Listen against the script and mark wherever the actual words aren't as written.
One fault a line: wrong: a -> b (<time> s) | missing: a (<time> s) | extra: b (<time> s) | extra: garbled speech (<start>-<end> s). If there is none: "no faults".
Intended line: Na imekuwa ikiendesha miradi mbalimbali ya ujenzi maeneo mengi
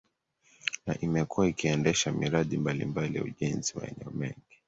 no faults